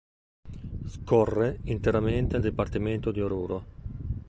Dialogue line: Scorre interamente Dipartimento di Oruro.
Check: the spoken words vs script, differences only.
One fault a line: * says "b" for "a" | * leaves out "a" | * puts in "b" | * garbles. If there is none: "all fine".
all fine